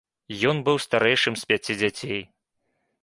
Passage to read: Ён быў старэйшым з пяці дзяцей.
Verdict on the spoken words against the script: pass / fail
pass